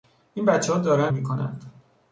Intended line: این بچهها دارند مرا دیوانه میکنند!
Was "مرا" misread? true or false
true